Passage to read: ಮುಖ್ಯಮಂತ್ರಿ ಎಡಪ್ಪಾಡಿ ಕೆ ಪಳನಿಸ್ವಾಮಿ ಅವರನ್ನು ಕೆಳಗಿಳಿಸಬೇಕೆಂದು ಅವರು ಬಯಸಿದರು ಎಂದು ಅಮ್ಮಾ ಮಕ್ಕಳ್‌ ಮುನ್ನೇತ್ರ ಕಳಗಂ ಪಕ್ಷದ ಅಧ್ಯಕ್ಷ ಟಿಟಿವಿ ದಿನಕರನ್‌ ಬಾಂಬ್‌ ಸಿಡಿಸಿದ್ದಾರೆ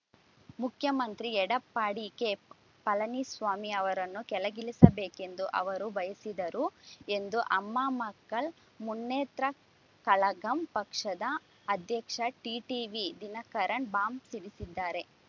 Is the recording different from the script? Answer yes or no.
no